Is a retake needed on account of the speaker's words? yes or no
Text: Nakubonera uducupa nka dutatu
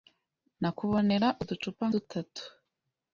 yes